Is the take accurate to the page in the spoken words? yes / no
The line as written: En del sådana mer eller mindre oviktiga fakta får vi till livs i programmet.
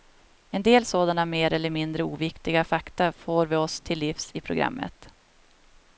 no